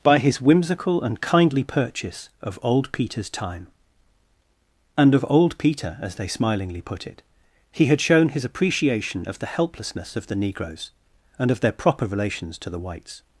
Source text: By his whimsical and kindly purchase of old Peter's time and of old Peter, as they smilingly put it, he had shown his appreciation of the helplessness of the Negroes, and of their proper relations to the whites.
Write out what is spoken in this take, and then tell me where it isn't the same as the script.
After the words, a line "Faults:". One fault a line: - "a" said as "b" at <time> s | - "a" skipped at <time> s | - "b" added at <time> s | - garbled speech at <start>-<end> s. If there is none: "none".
By his whimsical and kindly purchase of old Peter's time and of old Peter, as they smilingly put it, he had shown his appreciation of the helplessness of the Negroes, and of their proper relations to the whites.
Faults:
none